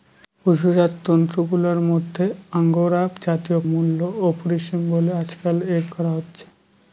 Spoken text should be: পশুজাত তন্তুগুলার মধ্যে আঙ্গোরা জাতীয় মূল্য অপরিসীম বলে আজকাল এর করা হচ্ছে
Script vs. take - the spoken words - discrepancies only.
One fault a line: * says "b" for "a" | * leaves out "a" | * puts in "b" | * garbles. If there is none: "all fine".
all fine